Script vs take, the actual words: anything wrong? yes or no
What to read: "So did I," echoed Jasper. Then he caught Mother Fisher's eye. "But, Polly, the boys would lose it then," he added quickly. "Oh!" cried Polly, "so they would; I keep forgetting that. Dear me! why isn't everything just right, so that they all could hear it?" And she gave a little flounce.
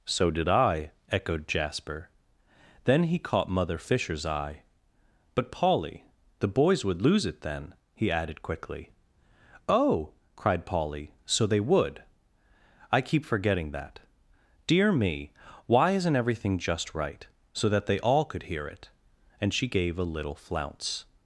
no